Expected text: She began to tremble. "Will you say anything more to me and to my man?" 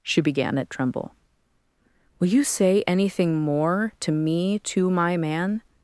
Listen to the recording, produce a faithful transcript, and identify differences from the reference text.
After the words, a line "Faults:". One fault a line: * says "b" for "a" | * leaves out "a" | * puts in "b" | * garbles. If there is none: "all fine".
She began at tremble. "Will you say anything more to me to my man?"
Faults:
* says "at" for "to"
* leaves out "and"